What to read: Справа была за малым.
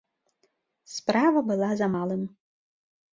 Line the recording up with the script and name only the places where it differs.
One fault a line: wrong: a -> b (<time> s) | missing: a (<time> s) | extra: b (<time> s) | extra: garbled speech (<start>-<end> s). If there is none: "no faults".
no faults